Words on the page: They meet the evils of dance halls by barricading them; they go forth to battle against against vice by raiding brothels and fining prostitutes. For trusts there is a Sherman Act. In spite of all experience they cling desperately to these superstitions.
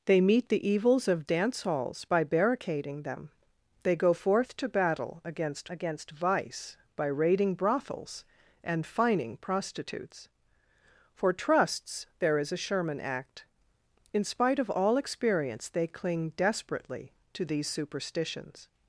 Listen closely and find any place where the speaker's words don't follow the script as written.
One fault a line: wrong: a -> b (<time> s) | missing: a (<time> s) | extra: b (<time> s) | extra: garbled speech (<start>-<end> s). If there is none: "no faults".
no faults